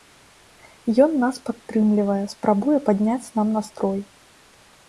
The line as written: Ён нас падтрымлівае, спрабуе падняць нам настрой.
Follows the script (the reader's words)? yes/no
yes